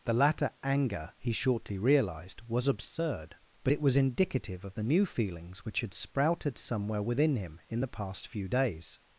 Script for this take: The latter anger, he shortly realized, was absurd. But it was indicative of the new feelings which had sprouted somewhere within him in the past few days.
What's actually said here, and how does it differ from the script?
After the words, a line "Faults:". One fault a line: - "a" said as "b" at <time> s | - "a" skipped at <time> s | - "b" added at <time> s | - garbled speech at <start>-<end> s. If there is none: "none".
The latter anger, he shortly realized, was absurd. But it was indicative of the new feelings which had sprouted somewhere within him in the past few days.
Faults:
none